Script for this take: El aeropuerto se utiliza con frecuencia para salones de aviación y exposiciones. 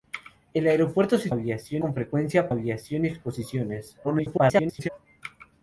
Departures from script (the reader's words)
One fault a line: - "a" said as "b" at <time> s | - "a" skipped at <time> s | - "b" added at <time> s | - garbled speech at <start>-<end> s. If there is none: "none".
- "utiliza" said as "aviación" at 1.3 s
- "para salones de" skipped at 2.5 s
- garbled speech at 4.0-4.9 s